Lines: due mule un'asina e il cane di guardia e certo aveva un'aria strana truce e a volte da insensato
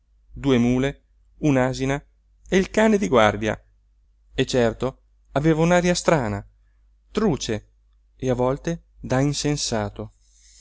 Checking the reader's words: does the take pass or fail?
pass